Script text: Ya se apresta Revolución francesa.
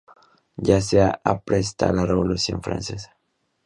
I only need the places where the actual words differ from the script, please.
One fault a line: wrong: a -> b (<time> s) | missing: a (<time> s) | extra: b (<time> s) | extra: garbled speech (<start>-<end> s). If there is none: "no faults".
extra: la (1.9 s)